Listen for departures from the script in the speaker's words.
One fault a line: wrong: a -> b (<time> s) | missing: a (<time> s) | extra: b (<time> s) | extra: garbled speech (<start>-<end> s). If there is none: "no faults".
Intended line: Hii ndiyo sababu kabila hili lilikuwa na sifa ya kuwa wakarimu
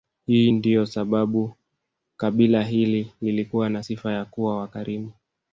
no faults